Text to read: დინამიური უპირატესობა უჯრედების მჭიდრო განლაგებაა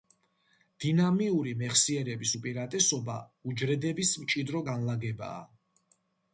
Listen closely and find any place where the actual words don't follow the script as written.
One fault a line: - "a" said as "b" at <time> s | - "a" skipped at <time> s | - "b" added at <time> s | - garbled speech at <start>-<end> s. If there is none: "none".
- "მეხსიერების" added at 1.6 s